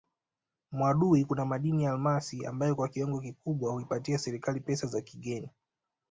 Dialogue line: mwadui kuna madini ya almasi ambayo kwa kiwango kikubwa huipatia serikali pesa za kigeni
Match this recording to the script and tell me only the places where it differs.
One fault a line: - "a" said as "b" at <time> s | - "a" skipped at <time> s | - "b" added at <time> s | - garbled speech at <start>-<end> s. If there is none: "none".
none